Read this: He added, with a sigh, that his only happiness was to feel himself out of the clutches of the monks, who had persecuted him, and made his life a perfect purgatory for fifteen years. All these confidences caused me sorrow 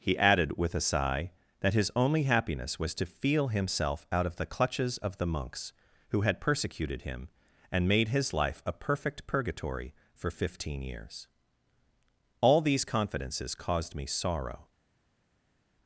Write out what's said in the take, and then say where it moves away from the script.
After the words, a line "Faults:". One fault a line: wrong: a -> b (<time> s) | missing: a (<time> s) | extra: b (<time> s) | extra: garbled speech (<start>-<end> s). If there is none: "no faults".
He added, with a sigh, that his only happiness was to feel himself out of the clutches of the monks, who had persecuted him, and made his life a perfect purgatory for fifteen years. All these confidences caused me sorrow
Faults:
no faults